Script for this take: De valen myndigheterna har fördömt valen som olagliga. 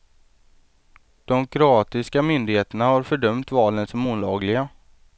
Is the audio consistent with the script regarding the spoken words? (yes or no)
no